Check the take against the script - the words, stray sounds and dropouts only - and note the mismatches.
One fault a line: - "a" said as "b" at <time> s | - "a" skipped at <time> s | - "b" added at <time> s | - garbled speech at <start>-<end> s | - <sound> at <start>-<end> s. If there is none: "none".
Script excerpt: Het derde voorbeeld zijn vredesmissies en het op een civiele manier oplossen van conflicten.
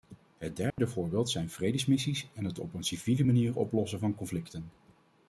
- dropout at 0.7-0.8 s